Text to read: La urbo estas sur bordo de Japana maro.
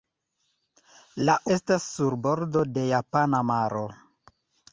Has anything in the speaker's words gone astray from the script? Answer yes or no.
yes